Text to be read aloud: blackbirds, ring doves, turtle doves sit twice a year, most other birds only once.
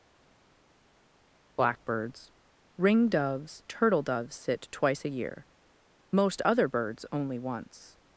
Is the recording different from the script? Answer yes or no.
no